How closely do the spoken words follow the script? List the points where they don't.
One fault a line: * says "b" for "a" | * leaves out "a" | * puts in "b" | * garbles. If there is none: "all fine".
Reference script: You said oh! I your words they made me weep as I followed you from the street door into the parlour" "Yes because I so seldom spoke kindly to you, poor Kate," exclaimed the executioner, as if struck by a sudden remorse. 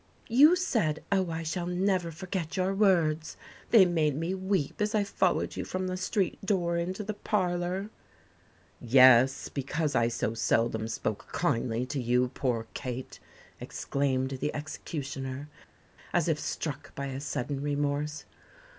* puts in "shall never forget"